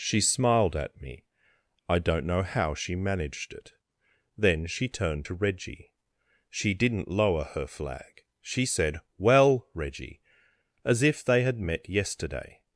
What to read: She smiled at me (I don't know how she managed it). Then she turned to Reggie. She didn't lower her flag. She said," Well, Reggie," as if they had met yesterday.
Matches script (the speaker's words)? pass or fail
pass